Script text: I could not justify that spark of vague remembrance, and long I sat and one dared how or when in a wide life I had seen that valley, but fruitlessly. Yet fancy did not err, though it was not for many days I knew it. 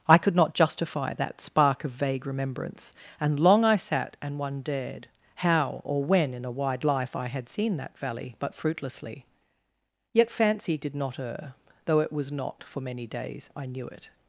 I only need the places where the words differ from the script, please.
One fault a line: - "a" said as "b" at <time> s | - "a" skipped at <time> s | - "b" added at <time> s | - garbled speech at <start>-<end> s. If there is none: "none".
none